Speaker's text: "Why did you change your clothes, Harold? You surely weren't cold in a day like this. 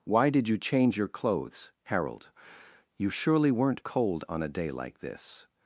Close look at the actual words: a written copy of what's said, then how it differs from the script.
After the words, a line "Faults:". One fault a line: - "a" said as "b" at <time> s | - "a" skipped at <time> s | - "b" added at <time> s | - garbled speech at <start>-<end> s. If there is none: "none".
"Why did you change your clothes, Harold? You surely weren't cold on a day like this.
Faults:
- "in" said as "on" at 4.3 s